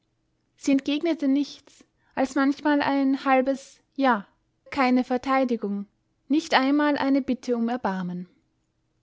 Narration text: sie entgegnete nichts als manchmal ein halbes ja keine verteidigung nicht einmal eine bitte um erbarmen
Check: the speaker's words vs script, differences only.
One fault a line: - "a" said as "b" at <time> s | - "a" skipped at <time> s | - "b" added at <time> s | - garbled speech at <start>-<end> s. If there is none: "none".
none